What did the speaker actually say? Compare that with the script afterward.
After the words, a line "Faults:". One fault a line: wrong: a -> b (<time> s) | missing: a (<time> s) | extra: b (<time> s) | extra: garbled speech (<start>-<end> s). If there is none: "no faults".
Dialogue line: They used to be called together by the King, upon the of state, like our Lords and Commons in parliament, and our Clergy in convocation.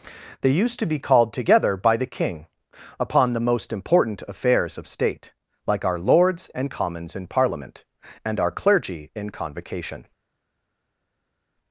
They used to be called together by the King, upon the most important affairs of state, like our Lords and Commons in parliament, and our Clergy in convocation.
Faults:
extra: most important affairs (3.5 s)